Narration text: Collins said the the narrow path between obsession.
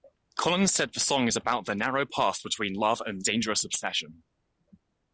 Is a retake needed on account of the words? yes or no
yes